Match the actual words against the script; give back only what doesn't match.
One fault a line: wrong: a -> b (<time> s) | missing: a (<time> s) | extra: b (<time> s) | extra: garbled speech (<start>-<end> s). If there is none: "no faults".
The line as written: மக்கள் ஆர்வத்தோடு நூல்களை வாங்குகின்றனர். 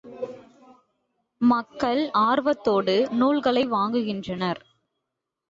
no faults